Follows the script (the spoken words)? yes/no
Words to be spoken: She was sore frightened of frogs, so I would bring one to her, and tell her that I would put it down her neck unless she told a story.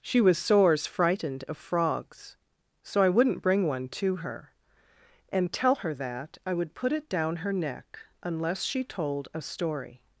no